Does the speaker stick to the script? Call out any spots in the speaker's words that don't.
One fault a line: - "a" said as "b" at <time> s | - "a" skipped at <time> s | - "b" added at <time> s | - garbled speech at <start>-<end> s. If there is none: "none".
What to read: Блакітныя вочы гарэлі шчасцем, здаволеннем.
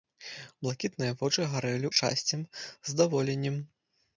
none